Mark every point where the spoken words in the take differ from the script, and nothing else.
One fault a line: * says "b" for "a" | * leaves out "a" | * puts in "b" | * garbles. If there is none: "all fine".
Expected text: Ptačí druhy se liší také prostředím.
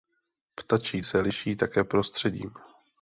* leaves out "druhy"